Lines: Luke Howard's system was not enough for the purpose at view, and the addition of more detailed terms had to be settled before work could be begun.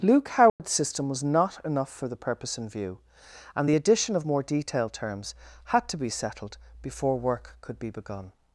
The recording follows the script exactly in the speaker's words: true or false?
false